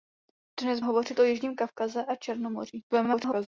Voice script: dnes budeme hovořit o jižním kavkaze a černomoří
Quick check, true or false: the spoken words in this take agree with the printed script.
false